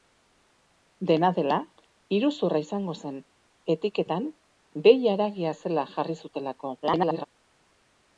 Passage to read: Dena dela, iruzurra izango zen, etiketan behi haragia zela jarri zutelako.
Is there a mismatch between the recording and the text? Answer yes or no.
yes